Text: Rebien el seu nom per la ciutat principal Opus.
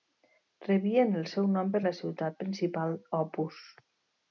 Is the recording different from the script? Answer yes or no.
no